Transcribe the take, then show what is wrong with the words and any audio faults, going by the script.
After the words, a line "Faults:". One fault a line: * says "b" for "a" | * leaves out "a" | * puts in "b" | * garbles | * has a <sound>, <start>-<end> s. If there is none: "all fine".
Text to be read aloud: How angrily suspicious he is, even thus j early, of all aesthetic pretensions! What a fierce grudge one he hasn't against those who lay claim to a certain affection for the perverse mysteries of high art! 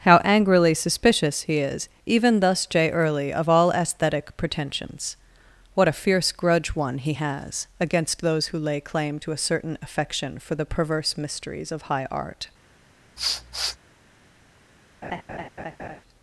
How angrily suspicious he is, even thus j early, of all aesthetic pretensions! What a fierce grudge one he has against those who lay claim to a certain affection for the perverse mysteries of high art!
Faults:
* says "has" for "hasn't"
* has a sniff, 13.2-13.8 s
* has a laugh, 15.0-16.0 s